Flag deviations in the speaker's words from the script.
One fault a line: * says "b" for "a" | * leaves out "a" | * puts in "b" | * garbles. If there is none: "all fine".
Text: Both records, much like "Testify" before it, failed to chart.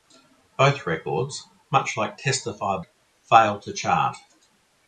* leaves out "before"